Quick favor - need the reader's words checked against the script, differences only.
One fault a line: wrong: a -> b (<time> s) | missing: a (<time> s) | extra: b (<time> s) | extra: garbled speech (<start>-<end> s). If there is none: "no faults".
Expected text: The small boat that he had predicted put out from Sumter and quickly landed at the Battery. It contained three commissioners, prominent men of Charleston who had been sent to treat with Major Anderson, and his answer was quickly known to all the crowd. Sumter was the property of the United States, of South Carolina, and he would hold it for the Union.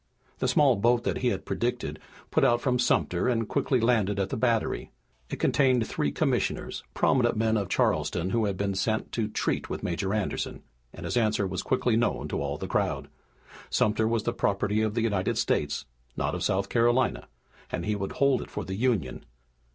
extra: not (16.2 s)